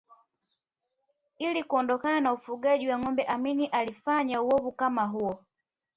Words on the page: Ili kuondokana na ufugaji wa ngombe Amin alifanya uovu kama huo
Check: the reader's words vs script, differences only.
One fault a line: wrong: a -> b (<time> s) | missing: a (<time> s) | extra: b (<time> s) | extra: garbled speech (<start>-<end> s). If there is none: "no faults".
no faults